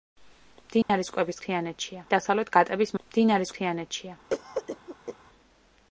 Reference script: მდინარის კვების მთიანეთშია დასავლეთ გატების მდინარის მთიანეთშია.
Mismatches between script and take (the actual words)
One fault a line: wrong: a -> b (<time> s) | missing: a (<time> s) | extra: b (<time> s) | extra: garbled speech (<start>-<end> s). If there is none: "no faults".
no faults